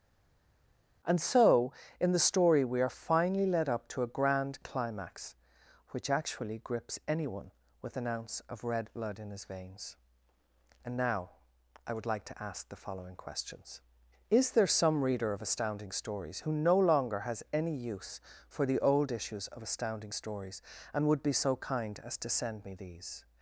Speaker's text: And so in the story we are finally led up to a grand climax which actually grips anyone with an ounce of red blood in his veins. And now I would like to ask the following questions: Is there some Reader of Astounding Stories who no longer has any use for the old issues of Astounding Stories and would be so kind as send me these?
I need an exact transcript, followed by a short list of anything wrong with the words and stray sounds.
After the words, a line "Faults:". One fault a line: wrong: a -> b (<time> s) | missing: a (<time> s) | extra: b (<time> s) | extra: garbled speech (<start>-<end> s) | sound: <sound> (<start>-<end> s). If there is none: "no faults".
And so in the story we are finally led up to a grand climax which actually grips anyone with an ounce of red blood in his veins. And now I would like to ask the following questions: Is there some Reader of Astounding Stories who no longer has any use for the old issues of Astounding Stories and would be so kind as to send me these?
Faults:
extra: to (22.2 s)